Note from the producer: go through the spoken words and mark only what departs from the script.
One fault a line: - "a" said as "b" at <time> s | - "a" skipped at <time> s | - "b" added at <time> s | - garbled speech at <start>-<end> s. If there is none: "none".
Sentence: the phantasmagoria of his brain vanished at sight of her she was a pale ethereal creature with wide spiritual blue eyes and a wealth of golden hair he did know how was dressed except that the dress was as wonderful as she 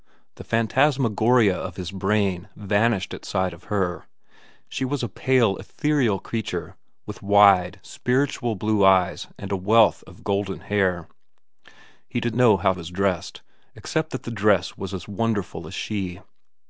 none